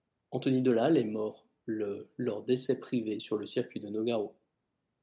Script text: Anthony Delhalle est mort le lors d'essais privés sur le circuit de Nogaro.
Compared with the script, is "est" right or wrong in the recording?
right